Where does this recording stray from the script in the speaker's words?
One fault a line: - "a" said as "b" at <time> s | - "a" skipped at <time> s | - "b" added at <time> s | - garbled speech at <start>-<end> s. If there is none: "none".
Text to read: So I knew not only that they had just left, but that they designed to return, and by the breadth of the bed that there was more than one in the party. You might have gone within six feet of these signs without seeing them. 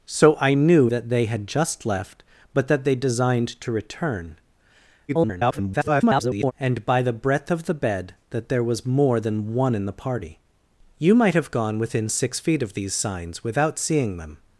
- "not only" skipped at 0.9 s
- garbled speech at 5.1-6.5 s